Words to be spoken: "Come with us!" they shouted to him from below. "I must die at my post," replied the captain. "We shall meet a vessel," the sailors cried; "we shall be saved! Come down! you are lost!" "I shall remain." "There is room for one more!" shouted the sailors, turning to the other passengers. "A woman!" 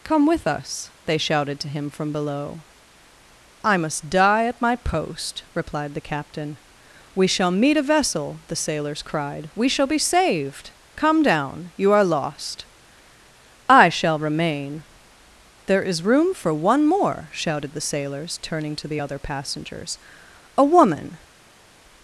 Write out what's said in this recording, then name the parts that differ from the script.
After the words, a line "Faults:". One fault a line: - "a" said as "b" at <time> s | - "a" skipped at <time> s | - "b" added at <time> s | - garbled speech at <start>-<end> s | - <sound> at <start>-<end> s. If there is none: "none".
"Come with us!" they shouted to him from below. "I must die at my post," replied the captain. "We shall meet a vessel," the sailors cried; "we shall be saved! Come down! you are lost!" "I shall remain." "There is room for one more!" shouted the sailors, turning to the other passengers. "A woman!"
Faults:
none